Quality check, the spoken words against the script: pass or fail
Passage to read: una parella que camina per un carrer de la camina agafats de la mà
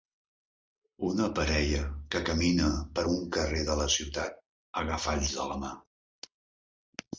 fail